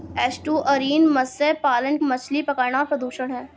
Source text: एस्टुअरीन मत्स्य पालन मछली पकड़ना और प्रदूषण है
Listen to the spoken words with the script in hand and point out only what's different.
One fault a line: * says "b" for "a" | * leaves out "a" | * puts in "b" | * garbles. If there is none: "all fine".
all fine